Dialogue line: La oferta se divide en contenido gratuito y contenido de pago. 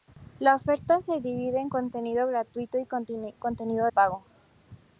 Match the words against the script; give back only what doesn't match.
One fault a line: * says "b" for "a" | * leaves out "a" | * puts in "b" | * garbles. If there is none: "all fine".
* leaves out "de"